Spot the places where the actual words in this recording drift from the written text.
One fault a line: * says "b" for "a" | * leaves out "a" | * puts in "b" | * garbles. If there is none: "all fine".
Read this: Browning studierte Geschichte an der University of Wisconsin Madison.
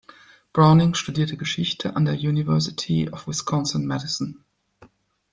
all fine